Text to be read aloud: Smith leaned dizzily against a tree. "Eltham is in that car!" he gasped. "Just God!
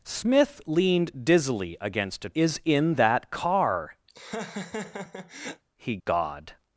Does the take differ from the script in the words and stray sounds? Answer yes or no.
yes